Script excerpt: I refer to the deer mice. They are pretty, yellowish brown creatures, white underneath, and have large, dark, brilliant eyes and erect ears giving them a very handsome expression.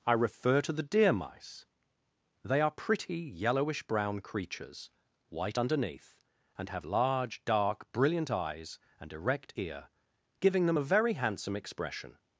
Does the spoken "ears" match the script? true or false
false